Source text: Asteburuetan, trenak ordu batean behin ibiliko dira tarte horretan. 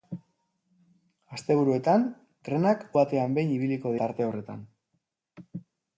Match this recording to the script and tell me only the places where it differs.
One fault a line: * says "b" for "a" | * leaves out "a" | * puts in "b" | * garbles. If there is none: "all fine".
* leaves out "ordu"
* leaves out "dira"